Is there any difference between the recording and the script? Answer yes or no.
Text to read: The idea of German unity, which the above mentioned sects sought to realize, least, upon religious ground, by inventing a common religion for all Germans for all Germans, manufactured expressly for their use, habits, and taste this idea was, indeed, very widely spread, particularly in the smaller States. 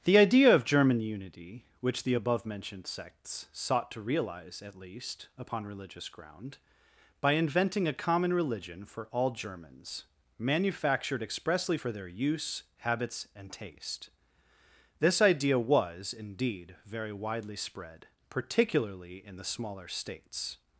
yes